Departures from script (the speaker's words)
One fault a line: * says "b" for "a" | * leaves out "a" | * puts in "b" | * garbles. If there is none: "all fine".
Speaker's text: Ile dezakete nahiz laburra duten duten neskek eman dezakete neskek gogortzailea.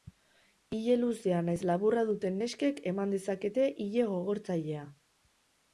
* says "luzea" for "dezakete"
* leaves out "duten"
* says "ile" for "neskek"